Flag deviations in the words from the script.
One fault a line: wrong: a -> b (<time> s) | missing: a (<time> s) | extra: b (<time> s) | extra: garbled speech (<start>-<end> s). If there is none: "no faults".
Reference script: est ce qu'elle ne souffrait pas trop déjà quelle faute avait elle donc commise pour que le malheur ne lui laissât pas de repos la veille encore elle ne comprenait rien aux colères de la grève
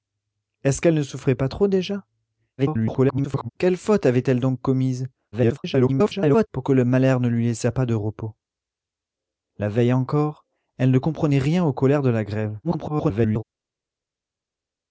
extra: garbled speech (2.6-3.5 s)
extra: garbled speech (5.3-6.5 s)
extra: garbled speech (12.6-13.4 s)